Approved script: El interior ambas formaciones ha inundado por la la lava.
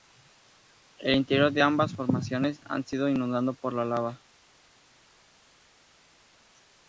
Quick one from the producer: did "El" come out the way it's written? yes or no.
yes